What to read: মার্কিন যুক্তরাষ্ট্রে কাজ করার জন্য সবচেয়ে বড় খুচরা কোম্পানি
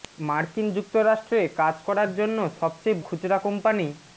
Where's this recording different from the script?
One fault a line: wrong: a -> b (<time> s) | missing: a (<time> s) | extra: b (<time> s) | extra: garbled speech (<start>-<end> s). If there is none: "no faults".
missing: বড় (3.0 s)